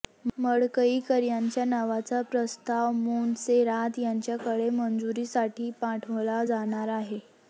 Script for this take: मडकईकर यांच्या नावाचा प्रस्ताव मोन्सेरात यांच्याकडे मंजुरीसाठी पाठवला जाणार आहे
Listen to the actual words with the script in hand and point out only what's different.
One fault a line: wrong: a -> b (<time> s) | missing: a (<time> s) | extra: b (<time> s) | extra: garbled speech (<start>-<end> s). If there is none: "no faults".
no faults